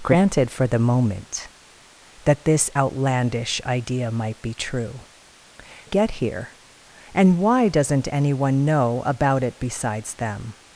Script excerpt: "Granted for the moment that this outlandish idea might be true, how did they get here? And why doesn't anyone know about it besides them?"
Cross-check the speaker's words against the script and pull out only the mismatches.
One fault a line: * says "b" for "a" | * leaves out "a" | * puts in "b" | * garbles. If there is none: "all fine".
* leaves out "how did they"